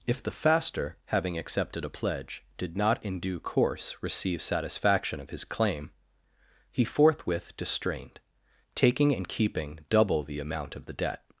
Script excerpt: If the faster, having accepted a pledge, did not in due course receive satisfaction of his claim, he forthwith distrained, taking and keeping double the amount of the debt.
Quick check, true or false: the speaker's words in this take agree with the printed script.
true